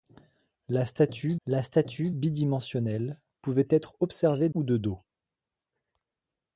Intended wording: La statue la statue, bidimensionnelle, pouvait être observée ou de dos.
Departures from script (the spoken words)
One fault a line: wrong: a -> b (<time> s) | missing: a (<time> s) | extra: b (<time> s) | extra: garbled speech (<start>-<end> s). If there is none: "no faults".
no faults